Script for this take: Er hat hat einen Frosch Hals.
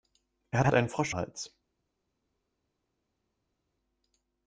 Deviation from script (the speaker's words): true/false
false